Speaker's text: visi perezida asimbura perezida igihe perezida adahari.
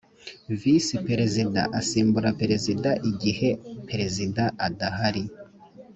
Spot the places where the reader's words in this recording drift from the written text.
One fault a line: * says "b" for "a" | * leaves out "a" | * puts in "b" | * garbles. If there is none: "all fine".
all fine